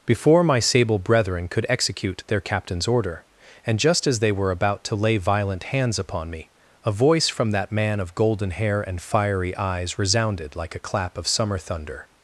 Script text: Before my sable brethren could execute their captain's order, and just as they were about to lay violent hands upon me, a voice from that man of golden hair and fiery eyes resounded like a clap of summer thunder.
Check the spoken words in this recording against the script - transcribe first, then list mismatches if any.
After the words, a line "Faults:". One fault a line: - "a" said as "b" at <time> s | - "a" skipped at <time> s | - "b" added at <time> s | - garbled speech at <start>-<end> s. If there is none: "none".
Before my sable brethren could execute their captain's order, and just as they were about to lay violent hands upon me, a voice from that man of golden hair and fiery eyes resounded like a clap of summer thunder.
Faults:
none